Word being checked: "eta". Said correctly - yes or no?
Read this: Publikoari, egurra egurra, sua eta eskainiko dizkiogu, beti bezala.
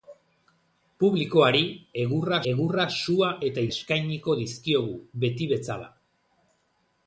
yes